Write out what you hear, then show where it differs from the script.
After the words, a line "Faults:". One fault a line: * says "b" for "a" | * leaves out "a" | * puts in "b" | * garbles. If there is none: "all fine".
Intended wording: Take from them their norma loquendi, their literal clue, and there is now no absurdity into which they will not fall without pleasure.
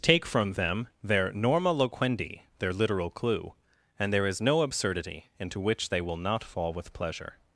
Take from them their norma loquendi, their literal clue, and there is no absurdity into which they will not fall with pleasure.
Faults:
* leaves out "now"
* says "with" for "without"